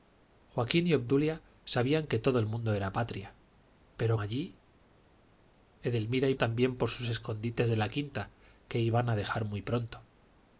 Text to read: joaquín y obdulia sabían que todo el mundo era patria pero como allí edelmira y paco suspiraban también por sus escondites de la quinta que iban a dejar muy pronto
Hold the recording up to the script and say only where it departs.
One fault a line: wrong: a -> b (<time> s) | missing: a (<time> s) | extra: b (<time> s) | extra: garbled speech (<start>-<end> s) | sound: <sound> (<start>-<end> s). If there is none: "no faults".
missing: como (4.2 s)
missing: paco suspiraban (6.3 s)